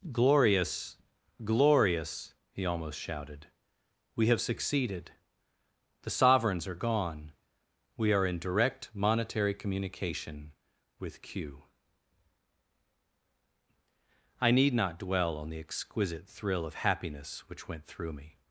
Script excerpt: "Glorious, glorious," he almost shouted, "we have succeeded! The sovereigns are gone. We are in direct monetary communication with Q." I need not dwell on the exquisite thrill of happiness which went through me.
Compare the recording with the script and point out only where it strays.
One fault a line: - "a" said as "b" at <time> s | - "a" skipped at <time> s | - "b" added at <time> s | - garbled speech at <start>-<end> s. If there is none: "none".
none